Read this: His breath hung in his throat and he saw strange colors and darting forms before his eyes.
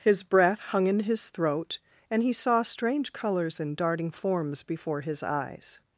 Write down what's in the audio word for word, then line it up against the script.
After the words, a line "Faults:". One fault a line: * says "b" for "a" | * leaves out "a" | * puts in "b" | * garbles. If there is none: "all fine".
His breath hung in his throat and he saw strange colors and darting forms before his eyes.
Faults:
all fine